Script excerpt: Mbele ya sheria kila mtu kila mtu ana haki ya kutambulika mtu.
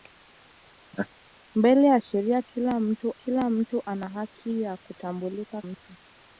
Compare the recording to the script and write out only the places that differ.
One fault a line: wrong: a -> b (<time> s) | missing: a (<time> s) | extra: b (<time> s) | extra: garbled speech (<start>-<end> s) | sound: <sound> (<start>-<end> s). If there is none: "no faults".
sound: laugh (0.9-1.1 s)